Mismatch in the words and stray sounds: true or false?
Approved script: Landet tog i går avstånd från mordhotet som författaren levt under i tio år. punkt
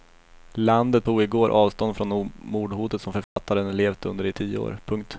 true